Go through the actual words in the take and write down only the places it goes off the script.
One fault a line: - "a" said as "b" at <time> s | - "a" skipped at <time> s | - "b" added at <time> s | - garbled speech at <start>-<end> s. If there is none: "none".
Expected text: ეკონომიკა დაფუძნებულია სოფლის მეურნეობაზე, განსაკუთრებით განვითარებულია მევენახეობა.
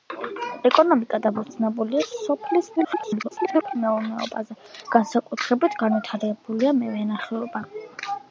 - garbled speech at 2.8-3.8 s